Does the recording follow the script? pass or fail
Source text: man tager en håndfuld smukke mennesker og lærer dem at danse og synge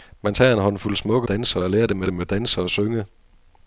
fail